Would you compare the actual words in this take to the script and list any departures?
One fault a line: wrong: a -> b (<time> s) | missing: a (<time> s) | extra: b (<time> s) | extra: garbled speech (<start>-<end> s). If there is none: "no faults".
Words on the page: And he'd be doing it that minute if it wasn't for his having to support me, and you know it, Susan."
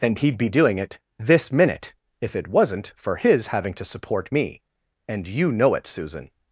wrong: that -> this (1.2 s)